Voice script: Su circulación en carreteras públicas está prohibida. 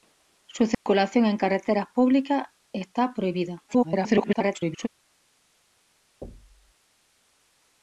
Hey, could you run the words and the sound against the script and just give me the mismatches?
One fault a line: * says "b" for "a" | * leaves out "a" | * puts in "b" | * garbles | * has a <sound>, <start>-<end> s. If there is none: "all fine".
* has a dropout, 0.7-0.9 s
* garbles
* has a thud, 6.2-6.7 s